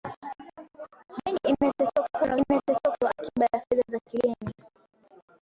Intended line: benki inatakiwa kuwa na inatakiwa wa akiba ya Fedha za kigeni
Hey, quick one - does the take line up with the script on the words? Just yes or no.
yes